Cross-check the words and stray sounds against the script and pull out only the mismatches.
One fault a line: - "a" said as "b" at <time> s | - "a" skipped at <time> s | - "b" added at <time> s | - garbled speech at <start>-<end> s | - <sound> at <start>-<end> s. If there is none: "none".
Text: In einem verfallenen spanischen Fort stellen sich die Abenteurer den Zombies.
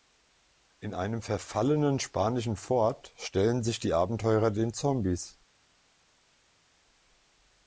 none